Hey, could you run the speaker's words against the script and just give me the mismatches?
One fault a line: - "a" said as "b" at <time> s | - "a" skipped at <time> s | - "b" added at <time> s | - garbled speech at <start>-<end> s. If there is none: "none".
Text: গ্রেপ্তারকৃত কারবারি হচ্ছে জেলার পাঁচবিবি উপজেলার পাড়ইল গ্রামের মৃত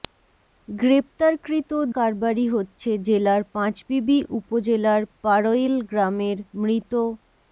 none